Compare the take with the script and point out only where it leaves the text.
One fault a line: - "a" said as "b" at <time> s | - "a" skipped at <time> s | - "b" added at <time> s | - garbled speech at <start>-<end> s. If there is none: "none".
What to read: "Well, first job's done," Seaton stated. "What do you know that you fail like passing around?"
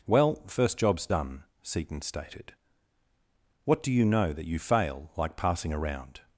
none